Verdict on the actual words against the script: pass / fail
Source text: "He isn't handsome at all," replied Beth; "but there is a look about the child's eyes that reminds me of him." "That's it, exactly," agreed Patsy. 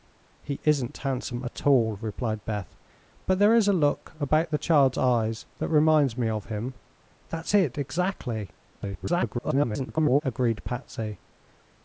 fail